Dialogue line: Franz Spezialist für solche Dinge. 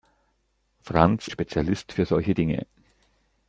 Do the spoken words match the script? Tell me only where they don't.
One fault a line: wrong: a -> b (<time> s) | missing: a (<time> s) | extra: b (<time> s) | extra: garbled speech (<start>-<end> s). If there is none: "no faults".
no faults